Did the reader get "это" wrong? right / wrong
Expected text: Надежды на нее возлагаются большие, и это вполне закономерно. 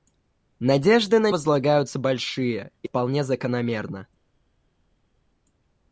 wrong